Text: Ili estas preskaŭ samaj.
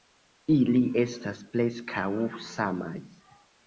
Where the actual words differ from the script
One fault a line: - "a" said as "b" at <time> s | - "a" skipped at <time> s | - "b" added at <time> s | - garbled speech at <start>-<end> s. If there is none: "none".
none